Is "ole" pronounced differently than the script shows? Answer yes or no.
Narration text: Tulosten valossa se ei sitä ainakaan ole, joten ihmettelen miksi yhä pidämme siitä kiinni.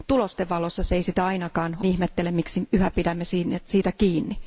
yes